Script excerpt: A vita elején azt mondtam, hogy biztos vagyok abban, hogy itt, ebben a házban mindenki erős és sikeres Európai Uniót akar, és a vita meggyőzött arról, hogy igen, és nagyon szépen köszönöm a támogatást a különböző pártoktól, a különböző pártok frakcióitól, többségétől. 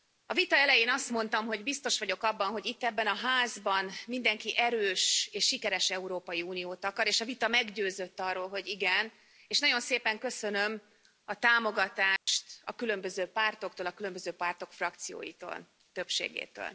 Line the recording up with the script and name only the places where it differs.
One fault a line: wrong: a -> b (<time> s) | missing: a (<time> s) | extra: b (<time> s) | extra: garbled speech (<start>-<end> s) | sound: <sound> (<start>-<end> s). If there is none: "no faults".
sound: dropout (12.2-12.3 s)